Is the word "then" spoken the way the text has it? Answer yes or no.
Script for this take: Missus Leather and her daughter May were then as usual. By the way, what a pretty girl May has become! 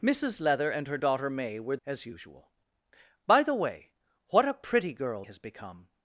no